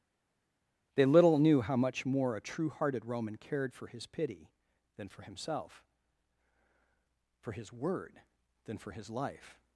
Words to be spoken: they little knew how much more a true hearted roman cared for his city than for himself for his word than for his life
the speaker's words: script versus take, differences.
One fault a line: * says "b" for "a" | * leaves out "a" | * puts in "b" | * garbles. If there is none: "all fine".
* says "pity" for "city"